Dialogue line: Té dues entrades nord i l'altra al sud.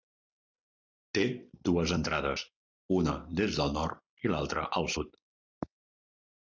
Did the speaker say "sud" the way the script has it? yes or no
yes